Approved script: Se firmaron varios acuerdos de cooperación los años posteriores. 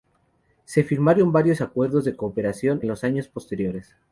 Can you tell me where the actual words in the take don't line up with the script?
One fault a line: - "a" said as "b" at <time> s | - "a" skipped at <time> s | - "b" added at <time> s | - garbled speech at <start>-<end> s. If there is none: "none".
none